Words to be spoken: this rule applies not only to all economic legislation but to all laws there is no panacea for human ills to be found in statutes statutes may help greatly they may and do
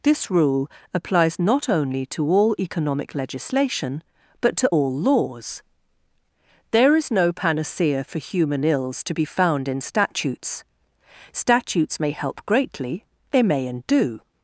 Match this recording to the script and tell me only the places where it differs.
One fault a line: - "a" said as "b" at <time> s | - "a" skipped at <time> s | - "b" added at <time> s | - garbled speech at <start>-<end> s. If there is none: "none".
none